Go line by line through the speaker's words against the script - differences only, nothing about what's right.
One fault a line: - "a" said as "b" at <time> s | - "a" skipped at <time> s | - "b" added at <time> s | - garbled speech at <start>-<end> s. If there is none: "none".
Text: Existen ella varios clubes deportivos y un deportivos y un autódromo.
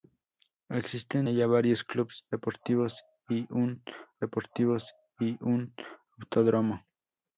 none